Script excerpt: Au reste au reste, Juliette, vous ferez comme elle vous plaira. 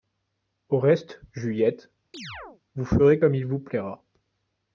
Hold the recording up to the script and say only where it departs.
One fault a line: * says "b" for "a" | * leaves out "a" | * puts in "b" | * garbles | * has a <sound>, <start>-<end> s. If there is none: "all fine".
* leaves out "au reste"
* has a chirp, 2.1-2.6 s
* says "il" for "elle"